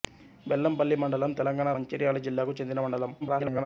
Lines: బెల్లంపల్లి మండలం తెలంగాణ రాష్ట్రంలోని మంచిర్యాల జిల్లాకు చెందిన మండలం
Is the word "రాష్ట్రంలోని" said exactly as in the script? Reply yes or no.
no